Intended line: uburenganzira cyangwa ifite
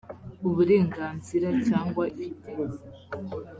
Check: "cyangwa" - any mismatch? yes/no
no